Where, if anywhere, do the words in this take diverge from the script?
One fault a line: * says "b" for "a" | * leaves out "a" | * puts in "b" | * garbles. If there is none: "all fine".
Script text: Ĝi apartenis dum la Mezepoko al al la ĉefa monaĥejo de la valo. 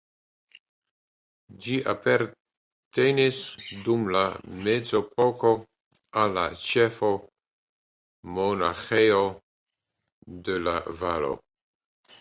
* leaves out "al"